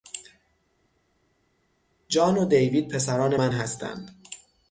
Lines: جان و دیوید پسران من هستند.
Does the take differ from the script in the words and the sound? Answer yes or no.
no